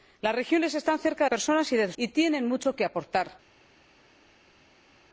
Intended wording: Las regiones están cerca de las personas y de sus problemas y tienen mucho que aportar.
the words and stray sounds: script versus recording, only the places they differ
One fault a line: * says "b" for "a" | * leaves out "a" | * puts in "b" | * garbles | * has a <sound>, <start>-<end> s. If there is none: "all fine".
* leaves out "las"
* leaves out "sus problemas"